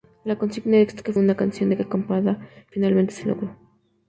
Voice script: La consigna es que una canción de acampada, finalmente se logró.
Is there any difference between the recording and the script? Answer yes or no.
no